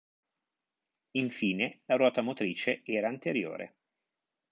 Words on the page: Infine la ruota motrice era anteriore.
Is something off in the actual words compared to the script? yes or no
no